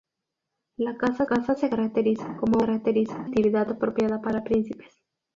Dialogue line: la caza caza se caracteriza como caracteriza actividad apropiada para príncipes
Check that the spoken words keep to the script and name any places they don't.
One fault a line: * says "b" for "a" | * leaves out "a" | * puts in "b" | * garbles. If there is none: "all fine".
all fine